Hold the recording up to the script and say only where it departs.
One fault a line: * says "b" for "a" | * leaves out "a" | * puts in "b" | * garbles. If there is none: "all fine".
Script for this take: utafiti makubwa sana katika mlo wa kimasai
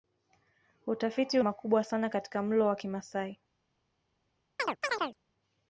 all fine